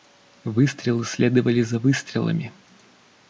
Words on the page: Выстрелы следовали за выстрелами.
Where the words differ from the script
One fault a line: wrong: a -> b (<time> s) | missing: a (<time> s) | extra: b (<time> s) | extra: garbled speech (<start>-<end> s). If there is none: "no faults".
no faults